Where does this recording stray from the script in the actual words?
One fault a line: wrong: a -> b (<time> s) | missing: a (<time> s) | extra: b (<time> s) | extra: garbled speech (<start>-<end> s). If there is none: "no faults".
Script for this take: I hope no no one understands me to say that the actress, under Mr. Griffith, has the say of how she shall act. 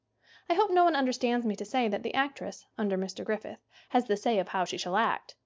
missing: no (0.8 s)